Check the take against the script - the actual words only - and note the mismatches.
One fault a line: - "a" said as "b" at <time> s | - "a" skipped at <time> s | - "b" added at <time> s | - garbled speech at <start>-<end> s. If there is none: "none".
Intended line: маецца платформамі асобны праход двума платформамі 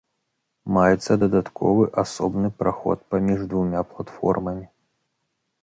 - "платформамі" said as "дадатковы" at 1.2 s
- "паміж" added at 3.1 s